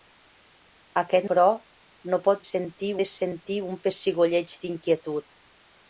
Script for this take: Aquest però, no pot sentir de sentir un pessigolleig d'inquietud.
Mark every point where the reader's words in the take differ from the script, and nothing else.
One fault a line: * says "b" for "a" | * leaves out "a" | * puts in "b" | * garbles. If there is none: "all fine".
all fine